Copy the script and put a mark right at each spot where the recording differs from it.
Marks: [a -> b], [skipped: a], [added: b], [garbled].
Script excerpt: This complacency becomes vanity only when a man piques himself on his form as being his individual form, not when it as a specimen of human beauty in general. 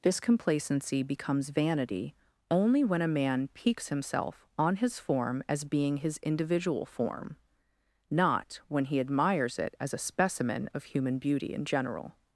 This complacency becomes vanity only when a man piques himself on his form as being his individual form, not when [added: he admires] it as a specimen of human beauty in general.